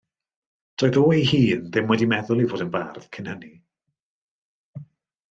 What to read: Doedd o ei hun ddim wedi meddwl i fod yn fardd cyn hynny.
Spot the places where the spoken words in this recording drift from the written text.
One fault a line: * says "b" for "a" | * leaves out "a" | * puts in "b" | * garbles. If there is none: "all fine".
all fine